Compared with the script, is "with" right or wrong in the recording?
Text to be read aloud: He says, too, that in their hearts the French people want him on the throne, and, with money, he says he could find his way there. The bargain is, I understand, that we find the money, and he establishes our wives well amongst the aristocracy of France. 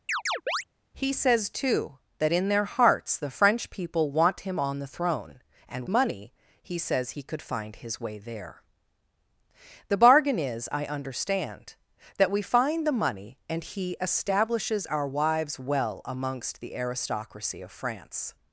wrong